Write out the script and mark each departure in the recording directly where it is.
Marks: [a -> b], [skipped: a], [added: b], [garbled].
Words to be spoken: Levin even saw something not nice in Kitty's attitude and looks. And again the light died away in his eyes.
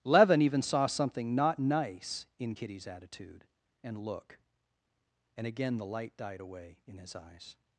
Levin even saw something not nice in Kitty's attitude and [looks. -> look] And again the light died away in his eyes.